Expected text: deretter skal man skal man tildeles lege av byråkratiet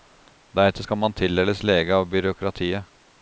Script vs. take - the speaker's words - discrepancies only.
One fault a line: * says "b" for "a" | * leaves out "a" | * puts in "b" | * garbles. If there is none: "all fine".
* leaves out "skal man"